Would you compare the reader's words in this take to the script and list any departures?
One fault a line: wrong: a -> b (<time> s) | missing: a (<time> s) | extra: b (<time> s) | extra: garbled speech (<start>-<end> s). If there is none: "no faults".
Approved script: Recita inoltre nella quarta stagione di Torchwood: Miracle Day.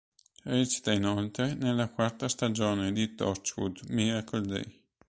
no faults